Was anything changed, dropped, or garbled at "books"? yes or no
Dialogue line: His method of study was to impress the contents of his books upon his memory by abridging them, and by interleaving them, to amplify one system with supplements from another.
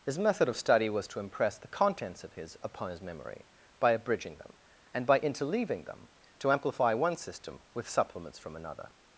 yes